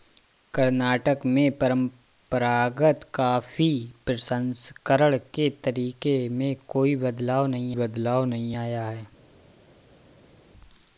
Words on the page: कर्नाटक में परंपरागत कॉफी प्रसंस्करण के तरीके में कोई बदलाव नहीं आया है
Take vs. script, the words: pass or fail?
fail